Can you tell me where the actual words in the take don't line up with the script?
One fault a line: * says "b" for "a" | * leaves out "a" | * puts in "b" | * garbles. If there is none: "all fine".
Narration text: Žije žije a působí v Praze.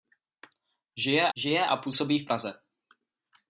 all fine